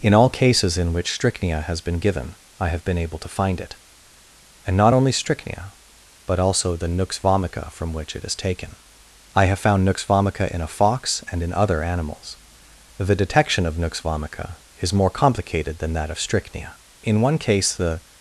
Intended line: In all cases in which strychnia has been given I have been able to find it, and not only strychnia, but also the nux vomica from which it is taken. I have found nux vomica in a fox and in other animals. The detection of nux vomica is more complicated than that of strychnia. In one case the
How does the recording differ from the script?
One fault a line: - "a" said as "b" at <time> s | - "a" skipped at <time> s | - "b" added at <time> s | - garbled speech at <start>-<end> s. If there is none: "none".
none